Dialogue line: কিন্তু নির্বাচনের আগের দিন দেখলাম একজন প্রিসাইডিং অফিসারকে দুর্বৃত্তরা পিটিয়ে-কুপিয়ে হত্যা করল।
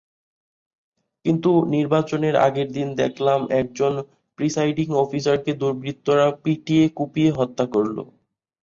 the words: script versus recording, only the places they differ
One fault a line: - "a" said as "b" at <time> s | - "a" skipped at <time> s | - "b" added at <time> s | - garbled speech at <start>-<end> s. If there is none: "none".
none